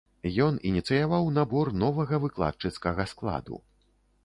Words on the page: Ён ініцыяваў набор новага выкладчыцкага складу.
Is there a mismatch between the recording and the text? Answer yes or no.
no